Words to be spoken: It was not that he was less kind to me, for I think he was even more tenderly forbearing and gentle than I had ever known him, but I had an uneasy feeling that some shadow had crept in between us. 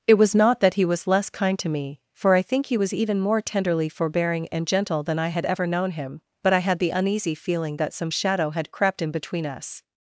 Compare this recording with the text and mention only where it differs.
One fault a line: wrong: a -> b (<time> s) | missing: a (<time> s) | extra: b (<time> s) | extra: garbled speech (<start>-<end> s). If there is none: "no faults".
wrong: an -> the (6.8 s)